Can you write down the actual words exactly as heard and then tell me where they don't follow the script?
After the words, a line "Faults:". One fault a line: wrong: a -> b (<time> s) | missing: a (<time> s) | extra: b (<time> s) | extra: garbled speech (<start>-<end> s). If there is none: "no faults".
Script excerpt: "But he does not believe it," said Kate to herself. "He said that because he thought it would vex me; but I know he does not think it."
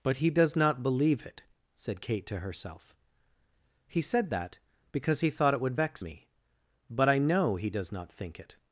"But he does not believe it," said Kate to herself. "He said that because he thought it would vex me; but I know he does not think it."
Faults:
no faults